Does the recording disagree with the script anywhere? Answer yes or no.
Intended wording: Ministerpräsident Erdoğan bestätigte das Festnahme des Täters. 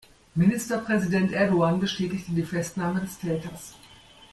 yes